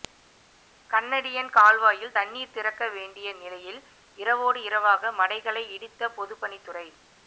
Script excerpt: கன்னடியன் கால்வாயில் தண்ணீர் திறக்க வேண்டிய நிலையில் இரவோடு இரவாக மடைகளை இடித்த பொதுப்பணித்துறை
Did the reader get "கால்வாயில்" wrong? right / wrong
right